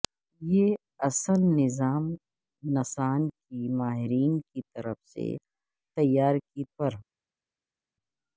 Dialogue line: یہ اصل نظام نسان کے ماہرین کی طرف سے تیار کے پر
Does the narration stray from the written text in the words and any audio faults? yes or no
no